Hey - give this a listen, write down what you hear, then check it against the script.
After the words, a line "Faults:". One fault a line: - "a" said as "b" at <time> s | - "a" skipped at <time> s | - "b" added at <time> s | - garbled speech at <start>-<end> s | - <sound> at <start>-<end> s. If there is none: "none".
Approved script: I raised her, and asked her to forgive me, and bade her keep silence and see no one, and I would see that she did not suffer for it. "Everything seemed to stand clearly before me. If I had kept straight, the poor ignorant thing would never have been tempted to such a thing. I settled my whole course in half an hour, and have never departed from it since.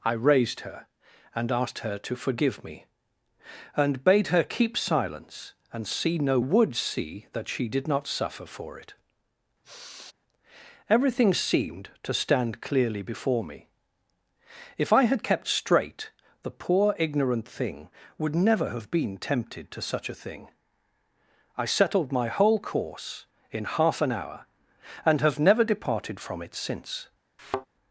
I raised her, and asked her to forgive me, and bade her keep silence and see no would see that she did not suffer for it. "Everything seemed to stand clearly before me. If I had kept straight, the poor ignorant thing would never have been tempted to such a thing. I settled my whole course in half an hour, and have never departed from it since.
Faults:
- "one and I" skipped at 6.4 s
- sigh at 9.6-10.1 s
- thud at 27.4-27.7 s